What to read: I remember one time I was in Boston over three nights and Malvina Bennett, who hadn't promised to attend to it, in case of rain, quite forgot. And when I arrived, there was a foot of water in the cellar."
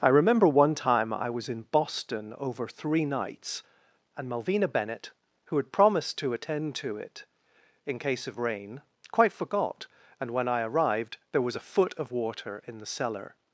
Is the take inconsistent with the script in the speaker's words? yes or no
yes